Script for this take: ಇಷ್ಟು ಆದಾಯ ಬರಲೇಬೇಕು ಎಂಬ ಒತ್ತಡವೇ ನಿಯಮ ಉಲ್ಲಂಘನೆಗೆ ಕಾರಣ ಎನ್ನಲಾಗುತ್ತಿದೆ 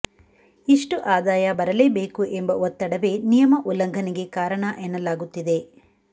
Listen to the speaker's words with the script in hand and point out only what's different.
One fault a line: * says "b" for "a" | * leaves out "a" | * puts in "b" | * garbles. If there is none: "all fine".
all fine